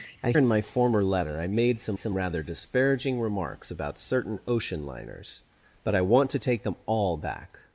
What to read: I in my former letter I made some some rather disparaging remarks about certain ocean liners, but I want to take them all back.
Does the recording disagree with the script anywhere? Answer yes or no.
no